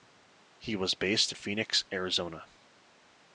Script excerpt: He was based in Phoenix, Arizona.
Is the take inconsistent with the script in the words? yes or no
yes